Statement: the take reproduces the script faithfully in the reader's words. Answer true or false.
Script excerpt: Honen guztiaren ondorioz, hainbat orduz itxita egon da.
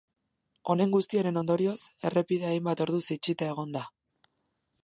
false